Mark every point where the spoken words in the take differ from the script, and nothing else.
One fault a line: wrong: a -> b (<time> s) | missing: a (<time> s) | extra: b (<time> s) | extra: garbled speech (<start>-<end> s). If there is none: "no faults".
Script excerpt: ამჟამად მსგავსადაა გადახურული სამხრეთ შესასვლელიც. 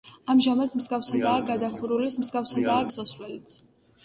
wrong: სამხრეთ -> მსგავსადაა (2.2 s)